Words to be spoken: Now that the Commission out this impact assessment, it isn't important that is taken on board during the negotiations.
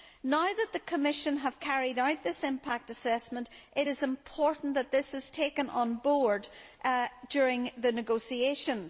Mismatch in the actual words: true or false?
true